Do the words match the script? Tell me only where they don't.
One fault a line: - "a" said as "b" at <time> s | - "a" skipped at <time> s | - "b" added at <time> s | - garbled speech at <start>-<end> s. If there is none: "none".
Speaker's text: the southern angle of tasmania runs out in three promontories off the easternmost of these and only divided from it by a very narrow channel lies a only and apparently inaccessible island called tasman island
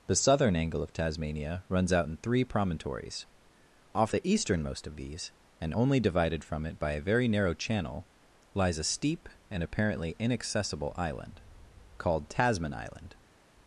- "only" said as "steep" at 8.8 s